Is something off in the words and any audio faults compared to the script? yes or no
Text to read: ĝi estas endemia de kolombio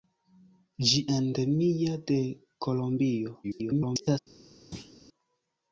yes